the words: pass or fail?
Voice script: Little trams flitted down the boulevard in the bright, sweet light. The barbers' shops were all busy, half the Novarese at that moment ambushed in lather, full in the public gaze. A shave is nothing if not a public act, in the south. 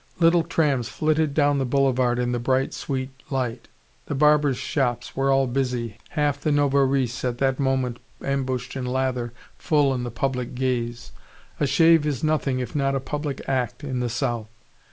pass